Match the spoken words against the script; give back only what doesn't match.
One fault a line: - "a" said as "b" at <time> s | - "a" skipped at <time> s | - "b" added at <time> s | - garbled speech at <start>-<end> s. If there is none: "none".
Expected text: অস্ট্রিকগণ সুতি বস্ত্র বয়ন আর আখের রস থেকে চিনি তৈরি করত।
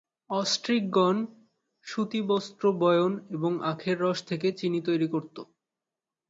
- "আর" said as "এবং" at 3.3 s